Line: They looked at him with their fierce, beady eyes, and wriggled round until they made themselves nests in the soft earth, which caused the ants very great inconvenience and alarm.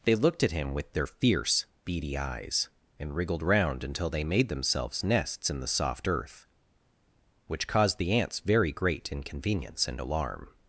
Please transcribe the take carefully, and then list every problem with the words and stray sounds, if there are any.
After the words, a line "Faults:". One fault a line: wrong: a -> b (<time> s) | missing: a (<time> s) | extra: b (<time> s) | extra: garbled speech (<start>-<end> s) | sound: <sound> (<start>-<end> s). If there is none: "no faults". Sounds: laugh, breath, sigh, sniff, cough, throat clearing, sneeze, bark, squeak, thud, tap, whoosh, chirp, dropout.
They looked at him with their fierce, beady eyes, and wriggled round until they made themselves nests in the soft earth, which caused the ants very great inconvenience and alarm.
Faults:
no faults